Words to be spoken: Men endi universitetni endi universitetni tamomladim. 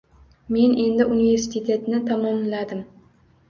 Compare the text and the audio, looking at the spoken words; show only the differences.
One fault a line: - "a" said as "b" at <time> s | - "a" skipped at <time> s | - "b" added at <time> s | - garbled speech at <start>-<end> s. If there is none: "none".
- "endi universitetni" skipped at 2.0 s